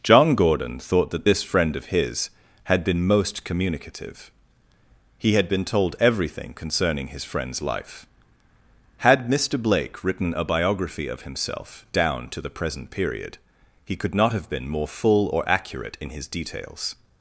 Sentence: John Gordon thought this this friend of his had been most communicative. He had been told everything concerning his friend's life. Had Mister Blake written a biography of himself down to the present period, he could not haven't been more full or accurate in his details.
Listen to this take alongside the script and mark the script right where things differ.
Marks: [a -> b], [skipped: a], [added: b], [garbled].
John Gordon thought [this -> that] this friend of his had been most communicative. He had been told everything concerning his friend's life. Had Mister Blake written a biography of himself down to the present period, he could not [haven't -> have] been more full or accurate in his details.